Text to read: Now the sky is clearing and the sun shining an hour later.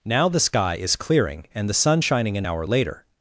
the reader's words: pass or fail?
pass